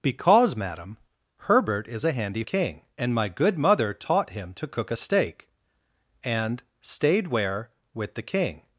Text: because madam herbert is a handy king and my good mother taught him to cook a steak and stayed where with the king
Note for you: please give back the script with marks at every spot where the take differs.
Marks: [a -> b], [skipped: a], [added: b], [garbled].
because madam herbert is a handy king and my good mother taught him to cook a steak and stayed where with the king